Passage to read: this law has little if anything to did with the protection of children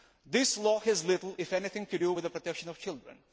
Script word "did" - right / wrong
wrong